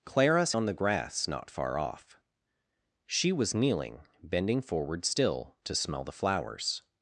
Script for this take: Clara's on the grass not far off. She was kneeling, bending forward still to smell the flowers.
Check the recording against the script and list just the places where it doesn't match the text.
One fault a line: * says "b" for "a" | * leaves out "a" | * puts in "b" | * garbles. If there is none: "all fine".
all fine